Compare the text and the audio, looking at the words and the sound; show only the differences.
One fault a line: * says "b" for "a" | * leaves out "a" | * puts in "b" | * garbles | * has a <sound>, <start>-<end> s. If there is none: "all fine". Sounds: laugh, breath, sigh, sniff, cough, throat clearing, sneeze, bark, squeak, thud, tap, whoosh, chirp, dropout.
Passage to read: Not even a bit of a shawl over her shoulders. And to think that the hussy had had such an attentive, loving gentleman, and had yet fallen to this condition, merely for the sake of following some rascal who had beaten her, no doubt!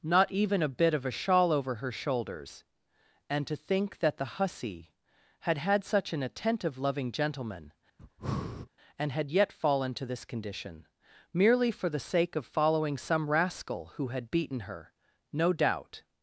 * has a breath, 8.0-8.7 s